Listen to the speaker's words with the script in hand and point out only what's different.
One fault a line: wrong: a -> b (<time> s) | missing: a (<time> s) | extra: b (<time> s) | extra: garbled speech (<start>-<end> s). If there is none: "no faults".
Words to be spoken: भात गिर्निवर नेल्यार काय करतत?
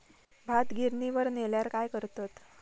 no faults